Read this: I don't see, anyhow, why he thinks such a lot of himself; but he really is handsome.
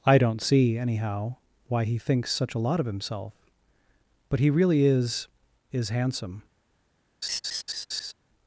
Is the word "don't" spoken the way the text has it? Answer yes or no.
yes